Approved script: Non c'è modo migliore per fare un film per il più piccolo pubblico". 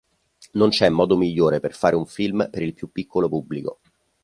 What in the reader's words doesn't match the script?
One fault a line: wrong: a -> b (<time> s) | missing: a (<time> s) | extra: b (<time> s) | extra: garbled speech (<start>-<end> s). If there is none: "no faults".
no faults